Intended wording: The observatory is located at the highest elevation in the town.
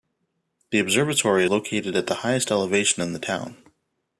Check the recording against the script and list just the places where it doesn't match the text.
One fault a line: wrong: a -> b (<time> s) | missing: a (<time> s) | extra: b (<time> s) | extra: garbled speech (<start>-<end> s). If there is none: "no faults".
missing: is (1.4 s)